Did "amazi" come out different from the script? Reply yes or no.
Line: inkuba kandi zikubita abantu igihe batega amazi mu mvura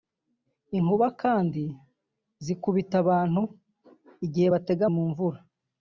yes